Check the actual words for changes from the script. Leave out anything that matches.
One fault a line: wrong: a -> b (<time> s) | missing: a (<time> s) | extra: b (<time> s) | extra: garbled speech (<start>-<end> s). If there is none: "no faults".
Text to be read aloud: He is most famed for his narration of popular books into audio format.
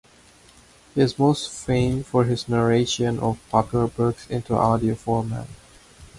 no faults